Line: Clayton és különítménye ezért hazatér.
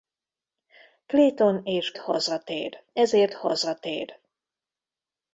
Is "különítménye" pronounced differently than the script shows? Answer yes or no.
yes